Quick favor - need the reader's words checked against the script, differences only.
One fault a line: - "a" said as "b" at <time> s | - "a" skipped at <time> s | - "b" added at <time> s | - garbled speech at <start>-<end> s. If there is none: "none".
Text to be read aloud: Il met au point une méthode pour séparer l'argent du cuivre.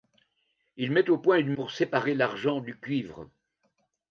- "méthode" skipped at 1.5 s